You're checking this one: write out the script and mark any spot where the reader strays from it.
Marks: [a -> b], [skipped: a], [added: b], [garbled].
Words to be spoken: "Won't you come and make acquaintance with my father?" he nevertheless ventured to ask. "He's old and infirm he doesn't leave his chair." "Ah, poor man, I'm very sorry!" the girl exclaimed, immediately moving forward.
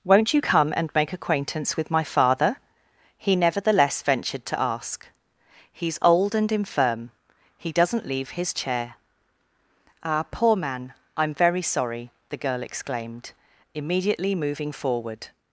"Won't you come and make acquaintance with my father?" he nevertheless ventured to ask. "He's old and infirm he doesn't leave his chair." "Ah, poor man, I'm very sorry!" the girl exclaimed, immediately moving forward.